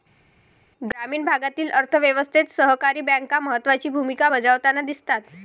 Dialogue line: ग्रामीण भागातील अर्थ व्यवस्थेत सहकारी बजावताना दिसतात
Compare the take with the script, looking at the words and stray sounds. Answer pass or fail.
fail